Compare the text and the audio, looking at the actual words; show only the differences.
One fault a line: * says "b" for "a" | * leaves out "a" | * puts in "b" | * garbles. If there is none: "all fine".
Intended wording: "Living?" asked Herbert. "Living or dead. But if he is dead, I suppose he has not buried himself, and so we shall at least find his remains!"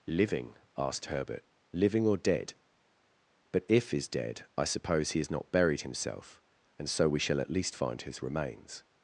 * leaves out "he"